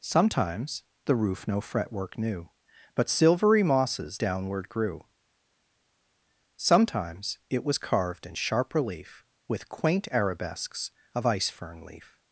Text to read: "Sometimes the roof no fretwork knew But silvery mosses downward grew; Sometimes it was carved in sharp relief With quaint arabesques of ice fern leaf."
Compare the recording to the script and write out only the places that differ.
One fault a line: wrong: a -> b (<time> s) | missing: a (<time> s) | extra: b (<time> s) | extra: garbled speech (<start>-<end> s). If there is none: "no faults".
no faults